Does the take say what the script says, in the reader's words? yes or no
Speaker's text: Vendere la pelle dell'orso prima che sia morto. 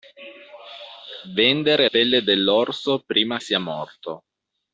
no